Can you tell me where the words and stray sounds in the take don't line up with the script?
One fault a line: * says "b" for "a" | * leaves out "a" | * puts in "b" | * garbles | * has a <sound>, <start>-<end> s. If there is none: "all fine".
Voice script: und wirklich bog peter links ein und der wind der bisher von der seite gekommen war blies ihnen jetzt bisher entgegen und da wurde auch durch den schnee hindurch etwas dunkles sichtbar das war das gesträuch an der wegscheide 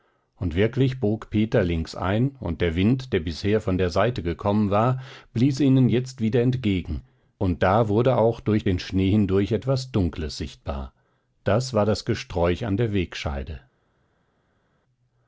* says "wieder" for "bisher"